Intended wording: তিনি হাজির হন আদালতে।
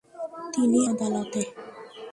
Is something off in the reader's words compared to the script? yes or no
yes